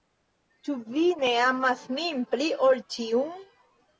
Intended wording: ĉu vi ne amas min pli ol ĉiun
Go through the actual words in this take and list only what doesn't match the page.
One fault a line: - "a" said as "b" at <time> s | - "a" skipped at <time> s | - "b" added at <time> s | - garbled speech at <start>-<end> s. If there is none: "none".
none